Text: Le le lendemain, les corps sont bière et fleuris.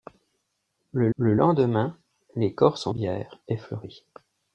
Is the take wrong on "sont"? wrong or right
right